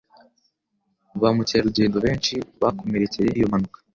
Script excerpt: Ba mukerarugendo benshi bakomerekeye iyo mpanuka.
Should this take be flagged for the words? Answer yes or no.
no